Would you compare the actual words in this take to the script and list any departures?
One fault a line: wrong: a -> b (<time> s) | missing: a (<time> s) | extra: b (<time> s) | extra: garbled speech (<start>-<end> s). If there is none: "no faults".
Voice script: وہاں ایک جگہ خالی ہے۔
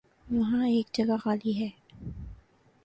no faults